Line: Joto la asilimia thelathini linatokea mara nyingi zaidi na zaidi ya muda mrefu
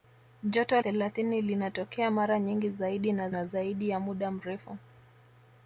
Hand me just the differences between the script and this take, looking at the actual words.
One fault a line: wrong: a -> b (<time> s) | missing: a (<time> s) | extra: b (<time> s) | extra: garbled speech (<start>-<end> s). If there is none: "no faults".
missing: la asilimia (0.8 s)
extra: na (3.3 s)